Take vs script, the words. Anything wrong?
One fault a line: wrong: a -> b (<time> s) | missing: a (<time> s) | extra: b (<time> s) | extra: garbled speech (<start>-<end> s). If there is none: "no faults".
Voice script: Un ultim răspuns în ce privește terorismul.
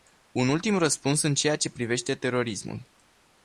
extra: ceea (1.3 s)